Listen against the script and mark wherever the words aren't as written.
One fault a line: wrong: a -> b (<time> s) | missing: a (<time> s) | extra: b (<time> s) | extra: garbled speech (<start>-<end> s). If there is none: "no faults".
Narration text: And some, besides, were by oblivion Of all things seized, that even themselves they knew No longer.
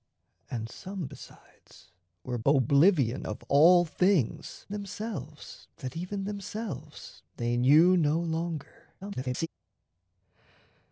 missing: by (2.4 s)
wrong: seized -> themselves (4.7 s)
extra: garbled speech (9.0-9.5 s)